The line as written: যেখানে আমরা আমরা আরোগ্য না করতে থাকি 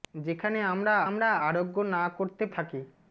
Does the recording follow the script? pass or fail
pass